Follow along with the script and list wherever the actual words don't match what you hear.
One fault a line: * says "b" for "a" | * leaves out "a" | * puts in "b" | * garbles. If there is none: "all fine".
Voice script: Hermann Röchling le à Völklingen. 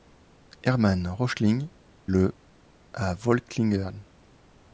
all fine